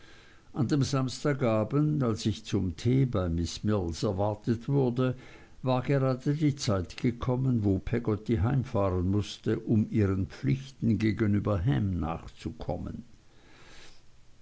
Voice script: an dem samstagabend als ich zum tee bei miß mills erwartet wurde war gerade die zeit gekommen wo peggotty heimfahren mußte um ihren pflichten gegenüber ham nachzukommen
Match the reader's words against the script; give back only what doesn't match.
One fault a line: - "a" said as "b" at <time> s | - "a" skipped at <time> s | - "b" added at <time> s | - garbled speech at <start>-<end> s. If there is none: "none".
none